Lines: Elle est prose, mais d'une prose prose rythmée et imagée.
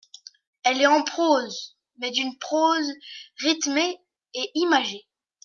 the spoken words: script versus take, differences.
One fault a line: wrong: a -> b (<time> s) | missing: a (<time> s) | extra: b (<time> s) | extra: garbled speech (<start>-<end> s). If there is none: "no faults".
extra: en (0.9 s)
missing: prose (2.9 s)